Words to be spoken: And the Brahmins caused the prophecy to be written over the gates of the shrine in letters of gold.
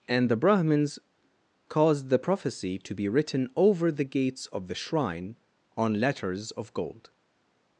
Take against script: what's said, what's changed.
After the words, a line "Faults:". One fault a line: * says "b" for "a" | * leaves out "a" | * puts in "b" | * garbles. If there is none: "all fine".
And the Brahmins caused the prophecy to be written over the gates of the shrine on letters of gold.
Faults:
* says "on" for "in"